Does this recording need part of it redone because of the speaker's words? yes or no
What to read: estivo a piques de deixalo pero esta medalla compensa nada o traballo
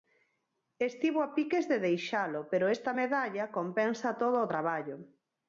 yes